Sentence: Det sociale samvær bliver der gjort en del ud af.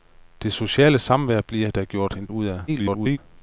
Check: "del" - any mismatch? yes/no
yes